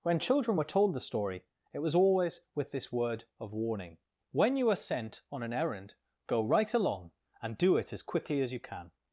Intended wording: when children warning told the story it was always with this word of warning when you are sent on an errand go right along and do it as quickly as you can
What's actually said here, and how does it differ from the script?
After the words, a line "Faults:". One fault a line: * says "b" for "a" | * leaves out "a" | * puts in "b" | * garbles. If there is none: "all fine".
when children were told the story it was always with this word of warning when you are sent on an errand go right along and do it as quickly as you can
Faults:
* says "were" for "warning"